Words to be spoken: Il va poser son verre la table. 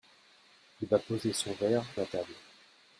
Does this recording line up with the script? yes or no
yes